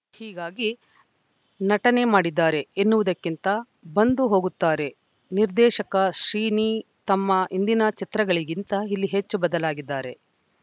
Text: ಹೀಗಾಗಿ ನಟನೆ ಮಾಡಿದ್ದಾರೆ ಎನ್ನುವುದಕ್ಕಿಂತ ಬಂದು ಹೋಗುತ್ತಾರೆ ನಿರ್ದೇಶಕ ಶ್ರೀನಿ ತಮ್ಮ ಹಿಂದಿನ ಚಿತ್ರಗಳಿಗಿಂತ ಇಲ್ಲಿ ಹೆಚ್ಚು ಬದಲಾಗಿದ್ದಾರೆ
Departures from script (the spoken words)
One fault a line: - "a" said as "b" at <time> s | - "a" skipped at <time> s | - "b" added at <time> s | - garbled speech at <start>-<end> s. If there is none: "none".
none